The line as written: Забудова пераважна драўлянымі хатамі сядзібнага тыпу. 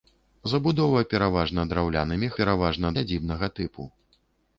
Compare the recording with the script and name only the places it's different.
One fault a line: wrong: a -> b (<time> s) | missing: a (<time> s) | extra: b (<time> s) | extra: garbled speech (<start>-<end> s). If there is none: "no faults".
wrong: хатамі -> пераважна (2.4 s)